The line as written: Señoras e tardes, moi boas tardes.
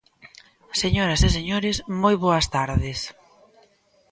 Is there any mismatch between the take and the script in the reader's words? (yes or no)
yes